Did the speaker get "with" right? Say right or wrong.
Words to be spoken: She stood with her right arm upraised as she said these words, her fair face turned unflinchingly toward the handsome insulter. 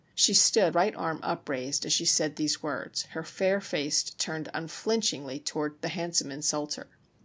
wrong